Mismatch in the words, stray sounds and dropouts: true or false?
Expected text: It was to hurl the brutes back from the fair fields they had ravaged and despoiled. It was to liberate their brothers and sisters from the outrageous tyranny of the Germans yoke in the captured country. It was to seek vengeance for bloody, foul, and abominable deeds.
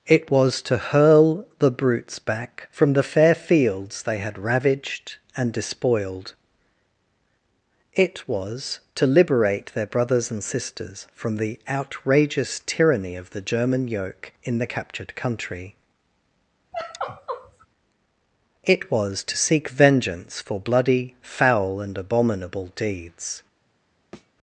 true